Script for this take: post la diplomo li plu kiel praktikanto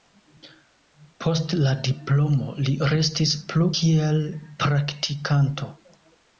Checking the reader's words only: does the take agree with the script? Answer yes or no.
no